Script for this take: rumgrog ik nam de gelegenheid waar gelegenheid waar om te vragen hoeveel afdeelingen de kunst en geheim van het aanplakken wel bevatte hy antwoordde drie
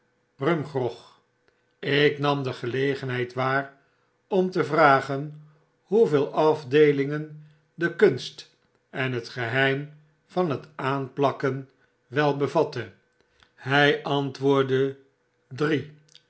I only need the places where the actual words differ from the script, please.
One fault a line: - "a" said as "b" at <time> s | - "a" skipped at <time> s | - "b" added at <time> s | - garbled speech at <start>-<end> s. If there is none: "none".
- "gelegenheid waar" skipped at 3.7 s
- "het" added at 9.1 s